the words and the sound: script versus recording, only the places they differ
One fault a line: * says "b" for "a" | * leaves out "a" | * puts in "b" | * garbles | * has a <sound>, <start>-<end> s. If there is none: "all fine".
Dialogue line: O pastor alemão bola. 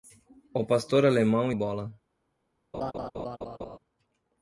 * has a laugh, 2.7-3.8 s